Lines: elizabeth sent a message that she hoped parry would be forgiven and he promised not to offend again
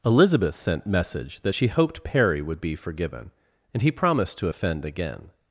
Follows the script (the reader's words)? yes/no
no